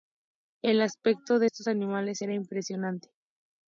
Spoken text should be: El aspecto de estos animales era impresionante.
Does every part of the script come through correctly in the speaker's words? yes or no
yes